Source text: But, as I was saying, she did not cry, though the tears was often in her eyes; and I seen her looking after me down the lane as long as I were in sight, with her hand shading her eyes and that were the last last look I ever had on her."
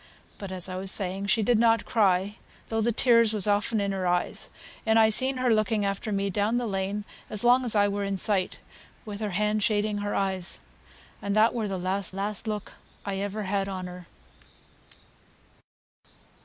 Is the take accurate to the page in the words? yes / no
yes